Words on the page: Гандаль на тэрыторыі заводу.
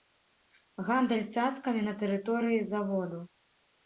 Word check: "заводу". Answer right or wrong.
right